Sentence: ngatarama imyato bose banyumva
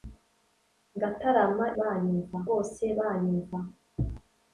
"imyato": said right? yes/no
no